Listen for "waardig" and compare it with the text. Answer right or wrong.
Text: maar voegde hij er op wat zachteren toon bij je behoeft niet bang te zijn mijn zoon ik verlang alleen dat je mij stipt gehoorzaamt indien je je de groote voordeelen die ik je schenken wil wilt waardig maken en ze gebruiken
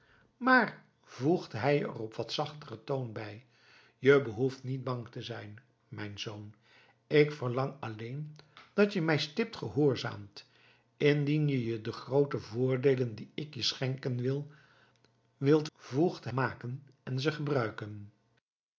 wrong